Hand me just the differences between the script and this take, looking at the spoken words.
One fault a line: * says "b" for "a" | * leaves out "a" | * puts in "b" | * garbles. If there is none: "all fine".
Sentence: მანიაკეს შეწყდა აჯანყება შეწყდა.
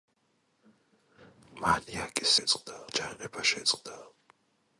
all fine